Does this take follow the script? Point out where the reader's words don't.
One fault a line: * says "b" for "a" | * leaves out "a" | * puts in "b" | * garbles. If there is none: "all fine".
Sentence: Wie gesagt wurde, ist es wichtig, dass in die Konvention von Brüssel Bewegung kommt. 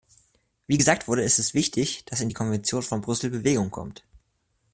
all fine